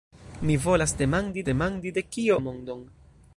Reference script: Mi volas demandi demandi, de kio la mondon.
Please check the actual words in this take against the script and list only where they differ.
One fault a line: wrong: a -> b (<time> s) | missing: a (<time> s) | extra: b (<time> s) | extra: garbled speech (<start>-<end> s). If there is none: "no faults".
no faults